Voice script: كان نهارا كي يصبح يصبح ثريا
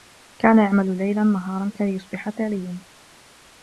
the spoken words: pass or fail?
fail